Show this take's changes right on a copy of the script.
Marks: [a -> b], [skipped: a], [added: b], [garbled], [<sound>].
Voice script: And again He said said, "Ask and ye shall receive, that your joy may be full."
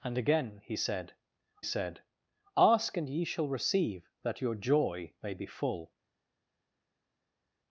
And again He said said, "Ask and ye shall receive, that your joy may be full."